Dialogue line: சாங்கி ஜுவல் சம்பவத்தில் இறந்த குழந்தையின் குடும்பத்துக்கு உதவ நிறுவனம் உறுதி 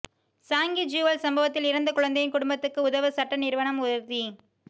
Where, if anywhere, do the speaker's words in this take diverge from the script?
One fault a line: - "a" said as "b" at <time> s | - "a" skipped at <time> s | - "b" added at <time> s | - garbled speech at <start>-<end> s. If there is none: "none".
- "சட்ட" added at 3.1 s